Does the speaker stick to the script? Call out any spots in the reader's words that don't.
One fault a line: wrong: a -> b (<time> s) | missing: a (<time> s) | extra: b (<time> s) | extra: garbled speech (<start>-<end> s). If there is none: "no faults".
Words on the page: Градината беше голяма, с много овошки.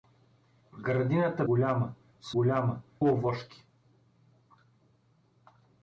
missing: беше (1.4 s)
wrong: много -> голяма (2.3 s)